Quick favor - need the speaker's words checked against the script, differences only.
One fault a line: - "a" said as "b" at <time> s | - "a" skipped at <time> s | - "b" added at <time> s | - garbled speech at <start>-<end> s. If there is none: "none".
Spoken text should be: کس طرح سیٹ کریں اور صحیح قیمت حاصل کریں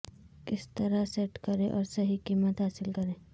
none